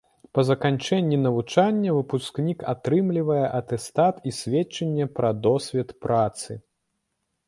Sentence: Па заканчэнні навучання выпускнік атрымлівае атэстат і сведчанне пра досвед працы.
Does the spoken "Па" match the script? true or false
true